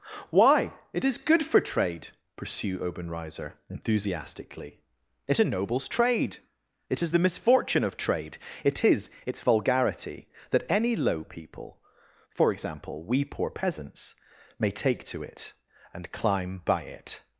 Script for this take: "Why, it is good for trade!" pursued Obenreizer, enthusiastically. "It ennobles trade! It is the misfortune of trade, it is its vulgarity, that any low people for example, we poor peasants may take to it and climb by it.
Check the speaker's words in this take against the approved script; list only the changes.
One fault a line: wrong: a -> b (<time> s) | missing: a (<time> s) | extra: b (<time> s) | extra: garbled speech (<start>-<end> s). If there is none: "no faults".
wrong: pursued -> pursue (2.4 s)